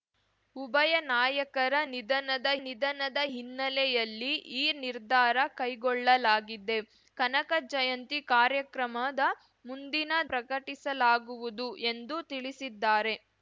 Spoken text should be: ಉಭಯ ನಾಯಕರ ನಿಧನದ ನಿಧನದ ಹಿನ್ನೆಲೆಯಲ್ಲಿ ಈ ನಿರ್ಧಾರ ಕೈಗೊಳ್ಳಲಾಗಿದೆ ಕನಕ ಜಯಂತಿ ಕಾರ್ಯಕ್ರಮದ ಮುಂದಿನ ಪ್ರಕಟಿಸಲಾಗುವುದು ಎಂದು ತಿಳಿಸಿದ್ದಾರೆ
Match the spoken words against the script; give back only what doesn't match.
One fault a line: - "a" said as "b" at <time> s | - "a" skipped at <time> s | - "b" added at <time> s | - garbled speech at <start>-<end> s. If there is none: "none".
none